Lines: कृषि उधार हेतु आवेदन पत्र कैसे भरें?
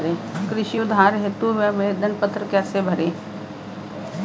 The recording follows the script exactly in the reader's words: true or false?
true